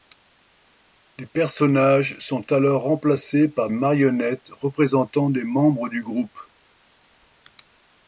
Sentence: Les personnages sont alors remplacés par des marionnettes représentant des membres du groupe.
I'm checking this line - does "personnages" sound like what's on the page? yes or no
yes